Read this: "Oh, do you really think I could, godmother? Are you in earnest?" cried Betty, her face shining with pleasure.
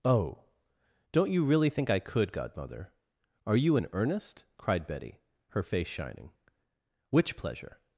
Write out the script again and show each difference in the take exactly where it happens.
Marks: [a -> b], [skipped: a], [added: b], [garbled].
"Oh, [do -> don't] you really think I could, godmother? Are you in earnest?" cried Betty, her face shining [with -> which] pleasure.